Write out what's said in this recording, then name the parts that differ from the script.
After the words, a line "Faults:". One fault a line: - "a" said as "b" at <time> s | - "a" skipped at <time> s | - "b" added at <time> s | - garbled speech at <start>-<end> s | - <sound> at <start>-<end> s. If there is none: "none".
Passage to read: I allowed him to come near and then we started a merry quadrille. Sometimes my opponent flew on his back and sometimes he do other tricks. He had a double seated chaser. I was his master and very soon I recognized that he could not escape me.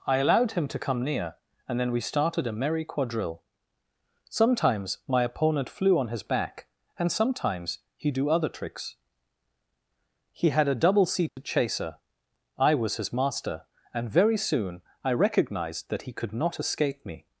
I allowed him to come near and then we started a merry quadrille. Sometimes my opponent flew on his back and sometimes he do other tricks. He had a double seated chaser. I was his master and very soon I recognized that he could not escape me.
Faults:
- dropout at 11.3-11.4 s